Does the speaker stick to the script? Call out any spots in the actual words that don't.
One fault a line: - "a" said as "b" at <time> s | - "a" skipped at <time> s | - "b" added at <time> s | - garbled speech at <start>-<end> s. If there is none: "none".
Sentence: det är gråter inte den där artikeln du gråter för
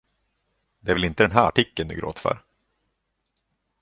- "gråter" said as "väl" at 0.9 s
- "där" said as "här" at 1.3 s